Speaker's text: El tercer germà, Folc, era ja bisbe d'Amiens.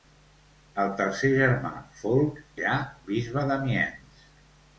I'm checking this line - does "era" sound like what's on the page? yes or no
no